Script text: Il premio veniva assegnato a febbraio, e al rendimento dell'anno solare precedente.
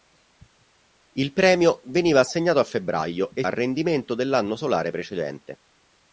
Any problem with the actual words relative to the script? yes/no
no